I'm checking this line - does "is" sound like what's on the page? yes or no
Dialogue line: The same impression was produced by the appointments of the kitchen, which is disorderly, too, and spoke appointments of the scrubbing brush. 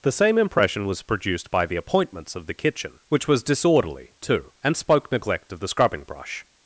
no